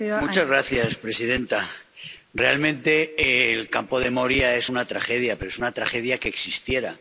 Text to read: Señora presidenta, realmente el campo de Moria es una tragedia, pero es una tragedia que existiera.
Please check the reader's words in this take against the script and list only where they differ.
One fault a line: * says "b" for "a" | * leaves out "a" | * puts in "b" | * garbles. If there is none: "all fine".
all fine